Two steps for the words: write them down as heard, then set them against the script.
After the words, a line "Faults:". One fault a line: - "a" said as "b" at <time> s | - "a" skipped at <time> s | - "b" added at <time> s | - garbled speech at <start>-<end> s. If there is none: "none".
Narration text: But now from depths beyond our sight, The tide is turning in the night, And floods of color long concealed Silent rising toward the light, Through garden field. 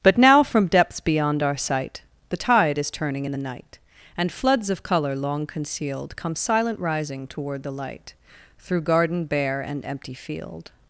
But now from depths beyond our sight, The tide is turning in the night, And floods of color long concealed Come silent rising toward the light, Through garden bare and empty field.
Faults:
- "Come" added at 6.2 s
- "bare and empty" added at 9.2 s